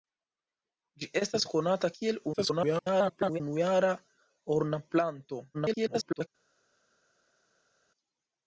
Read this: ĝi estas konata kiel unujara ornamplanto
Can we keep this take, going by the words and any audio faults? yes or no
no